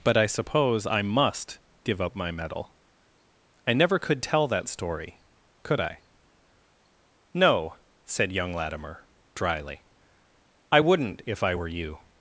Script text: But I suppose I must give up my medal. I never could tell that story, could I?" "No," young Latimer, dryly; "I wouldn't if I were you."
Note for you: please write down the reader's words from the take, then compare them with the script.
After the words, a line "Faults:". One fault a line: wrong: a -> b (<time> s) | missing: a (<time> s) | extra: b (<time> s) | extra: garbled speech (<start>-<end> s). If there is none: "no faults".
But I suppose I must give up my medal. I never could tell that story, could I?" "No," said young Latimer, dryly; "I wouldn't if I were you."
Faults:
extra: said (8.1 s)